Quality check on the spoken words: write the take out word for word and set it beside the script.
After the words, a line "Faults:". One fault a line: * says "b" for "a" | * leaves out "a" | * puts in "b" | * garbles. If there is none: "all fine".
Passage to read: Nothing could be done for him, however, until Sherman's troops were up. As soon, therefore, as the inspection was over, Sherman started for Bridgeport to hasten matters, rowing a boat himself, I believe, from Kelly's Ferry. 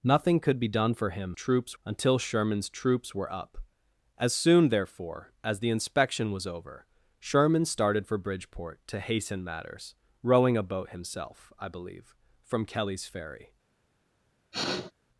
Nothing could be done for him, troops, until Sherman's troops were up. As soon, therefore, as the inspection was over, Sherman started for Bridgeport to hasten matters, rowing a boat himself, I believe, from Kelly's Ferry.
Faults:
* says "troops" for "however"